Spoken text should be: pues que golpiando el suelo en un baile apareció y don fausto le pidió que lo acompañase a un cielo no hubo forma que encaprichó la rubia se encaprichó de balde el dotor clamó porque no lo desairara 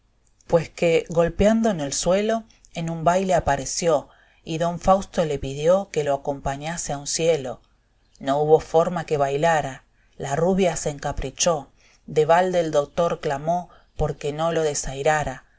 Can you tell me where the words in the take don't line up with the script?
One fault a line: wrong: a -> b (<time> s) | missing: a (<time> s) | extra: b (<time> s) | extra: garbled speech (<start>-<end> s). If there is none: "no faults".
extra: en (1.7 s)
wrong: encaprichó -> bailara (9.2 s)